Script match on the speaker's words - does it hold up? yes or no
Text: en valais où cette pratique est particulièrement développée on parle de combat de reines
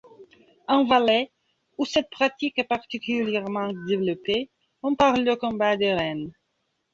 yes